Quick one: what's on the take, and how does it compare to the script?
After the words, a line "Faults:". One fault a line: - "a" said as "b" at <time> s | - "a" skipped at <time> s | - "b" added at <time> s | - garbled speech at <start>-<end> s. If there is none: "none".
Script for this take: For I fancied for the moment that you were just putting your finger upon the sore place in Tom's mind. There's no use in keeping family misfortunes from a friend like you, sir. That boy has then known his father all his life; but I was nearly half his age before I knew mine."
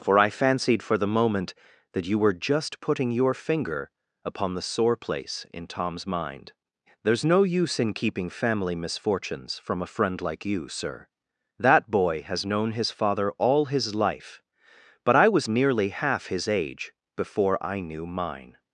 For I fancied for the moment that you were just putting your finger upon the sore place in Tom's mind. There's no use in keeping family misfortunes from a friend like you, sir. That boy has known his father all his life; but I was nearly half his age before I knew mine."
Faults:
- "then" skipped at 12.5 s